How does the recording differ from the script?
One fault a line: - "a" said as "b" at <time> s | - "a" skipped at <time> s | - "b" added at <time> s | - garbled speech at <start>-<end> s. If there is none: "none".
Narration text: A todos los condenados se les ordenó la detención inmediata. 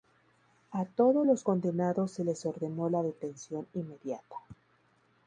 none